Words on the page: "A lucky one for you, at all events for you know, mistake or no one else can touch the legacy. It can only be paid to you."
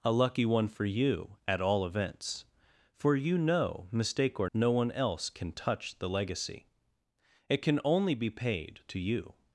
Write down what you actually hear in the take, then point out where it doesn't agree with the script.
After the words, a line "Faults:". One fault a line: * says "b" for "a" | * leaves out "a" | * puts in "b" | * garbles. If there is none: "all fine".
"A lucky one for you, at all events for you know, mistake or no one else can touch the legacy. It can only be paid to you."
Faults:
all fine